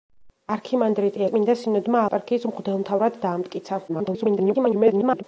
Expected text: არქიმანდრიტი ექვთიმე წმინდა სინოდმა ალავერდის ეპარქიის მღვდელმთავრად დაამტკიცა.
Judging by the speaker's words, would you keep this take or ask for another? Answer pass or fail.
fail